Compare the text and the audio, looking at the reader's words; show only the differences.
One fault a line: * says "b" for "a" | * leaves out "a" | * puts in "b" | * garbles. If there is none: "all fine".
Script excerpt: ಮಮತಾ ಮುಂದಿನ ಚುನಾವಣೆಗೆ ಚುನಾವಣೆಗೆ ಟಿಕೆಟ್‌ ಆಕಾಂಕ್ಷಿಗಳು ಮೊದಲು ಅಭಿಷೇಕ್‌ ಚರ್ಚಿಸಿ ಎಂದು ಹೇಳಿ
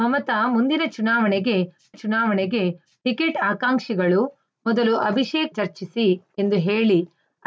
all fine